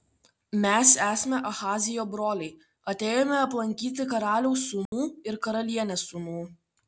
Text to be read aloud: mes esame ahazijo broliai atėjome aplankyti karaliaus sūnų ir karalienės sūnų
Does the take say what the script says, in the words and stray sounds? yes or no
no